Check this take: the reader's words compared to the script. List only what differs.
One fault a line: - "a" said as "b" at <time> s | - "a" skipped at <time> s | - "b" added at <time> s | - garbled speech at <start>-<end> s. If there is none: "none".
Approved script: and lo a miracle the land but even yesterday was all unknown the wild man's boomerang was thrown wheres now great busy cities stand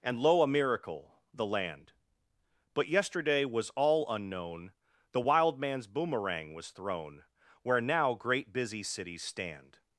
- "even" skipped at 2.9 s
- "wheres" said as "where" at 7.6 s